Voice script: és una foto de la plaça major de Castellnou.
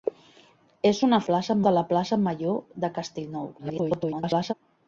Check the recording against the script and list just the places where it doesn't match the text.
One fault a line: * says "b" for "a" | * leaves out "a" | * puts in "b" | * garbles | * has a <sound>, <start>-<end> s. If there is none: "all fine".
* says "plaça" for "foto"
* garbles